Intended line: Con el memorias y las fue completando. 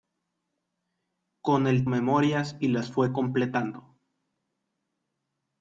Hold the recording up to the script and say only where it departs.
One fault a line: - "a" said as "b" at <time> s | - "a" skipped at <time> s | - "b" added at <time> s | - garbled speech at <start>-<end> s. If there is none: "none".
none